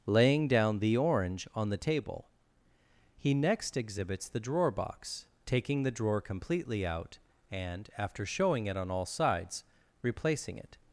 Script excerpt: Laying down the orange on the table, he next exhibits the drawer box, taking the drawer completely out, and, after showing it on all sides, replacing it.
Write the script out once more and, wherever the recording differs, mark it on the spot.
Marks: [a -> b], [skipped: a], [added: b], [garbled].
Laying down the orange on the table, he next exhibits the drawer box, taking the drawer completely out, and, after showing it on all sides, replacing it.